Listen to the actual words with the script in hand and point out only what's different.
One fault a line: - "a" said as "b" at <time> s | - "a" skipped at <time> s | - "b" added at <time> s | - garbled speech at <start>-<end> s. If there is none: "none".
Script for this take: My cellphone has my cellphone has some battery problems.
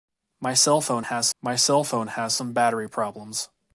none